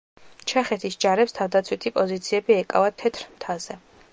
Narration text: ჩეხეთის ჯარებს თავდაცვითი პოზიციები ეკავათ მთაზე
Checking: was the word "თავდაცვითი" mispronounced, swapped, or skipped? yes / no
no